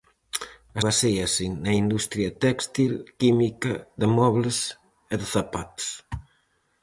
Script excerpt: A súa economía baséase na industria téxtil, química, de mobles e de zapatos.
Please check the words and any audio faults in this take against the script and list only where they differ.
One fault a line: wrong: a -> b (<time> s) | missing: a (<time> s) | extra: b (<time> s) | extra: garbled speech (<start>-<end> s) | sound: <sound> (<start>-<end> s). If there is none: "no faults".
missing: súa economía (0.8 s)